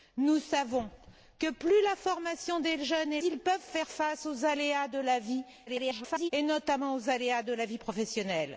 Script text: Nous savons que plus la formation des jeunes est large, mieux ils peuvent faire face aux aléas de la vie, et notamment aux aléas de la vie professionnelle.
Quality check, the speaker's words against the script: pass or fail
fail